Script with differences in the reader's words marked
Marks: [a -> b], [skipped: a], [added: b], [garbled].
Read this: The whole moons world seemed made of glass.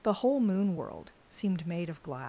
The whole [moons -> moon] world seemed made of glass.